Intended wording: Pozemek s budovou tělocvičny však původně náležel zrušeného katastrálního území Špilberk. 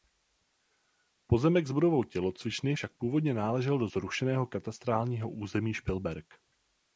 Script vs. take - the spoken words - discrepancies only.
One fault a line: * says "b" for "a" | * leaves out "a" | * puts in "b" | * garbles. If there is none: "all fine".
* puts in "do"